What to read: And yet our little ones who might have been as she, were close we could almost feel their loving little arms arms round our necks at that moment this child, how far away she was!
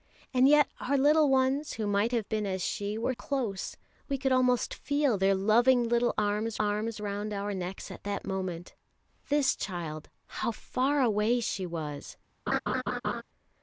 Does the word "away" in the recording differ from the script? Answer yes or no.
no